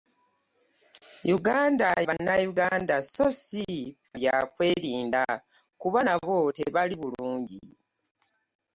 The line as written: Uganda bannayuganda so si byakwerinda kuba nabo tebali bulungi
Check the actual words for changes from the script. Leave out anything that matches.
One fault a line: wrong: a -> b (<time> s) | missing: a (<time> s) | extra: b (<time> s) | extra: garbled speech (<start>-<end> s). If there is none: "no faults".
no faults